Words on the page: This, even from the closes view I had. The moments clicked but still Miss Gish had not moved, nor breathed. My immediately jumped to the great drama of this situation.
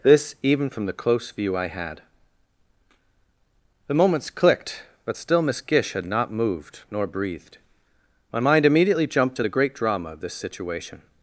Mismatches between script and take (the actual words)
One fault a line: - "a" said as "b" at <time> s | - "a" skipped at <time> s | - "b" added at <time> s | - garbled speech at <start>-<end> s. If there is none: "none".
- "closes" said as "close" at 1.0 s
- "mind" added at 8.4 s